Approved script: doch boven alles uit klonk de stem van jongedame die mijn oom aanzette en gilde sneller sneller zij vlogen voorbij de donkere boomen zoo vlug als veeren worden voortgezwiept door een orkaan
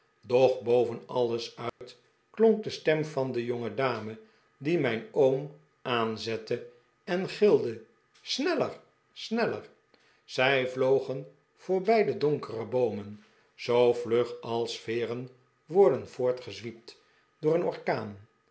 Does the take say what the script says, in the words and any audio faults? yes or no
no